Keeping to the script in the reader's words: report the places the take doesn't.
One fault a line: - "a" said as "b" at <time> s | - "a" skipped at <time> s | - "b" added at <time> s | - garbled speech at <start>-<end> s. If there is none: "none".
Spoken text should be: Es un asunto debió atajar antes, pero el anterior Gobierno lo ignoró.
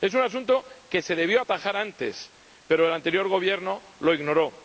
- "que se" added at 0.9 s